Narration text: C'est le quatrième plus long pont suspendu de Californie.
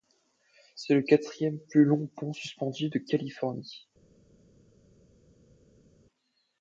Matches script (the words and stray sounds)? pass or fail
pass